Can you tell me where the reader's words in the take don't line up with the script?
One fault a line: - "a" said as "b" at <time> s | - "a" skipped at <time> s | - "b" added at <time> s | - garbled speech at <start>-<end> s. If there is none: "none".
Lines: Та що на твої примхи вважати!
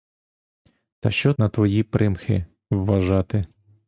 none